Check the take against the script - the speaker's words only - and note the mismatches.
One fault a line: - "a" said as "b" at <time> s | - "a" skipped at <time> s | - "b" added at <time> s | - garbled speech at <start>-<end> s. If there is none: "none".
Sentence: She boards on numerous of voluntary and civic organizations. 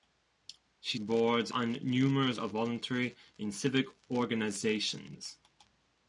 none